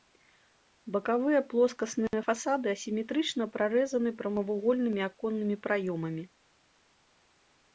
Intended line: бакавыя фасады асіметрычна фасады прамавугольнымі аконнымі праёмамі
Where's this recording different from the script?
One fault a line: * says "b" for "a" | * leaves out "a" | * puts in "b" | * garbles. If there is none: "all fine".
* puts in "плоскасныя"
* says "прарэзаны" for "фасады"